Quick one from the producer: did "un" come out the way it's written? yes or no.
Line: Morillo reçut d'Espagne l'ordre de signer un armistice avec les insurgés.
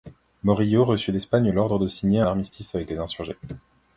no